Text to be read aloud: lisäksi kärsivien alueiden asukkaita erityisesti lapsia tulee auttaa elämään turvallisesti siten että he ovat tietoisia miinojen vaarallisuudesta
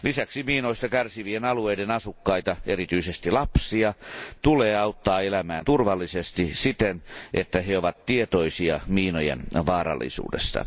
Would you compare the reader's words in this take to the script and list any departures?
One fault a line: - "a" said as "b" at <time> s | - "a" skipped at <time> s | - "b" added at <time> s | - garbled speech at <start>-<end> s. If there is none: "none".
- "miinoista" added at 0.4 s